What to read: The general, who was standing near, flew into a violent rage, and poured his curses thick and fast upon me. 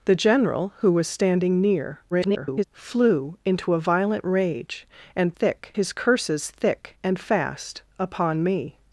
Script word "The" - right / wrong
right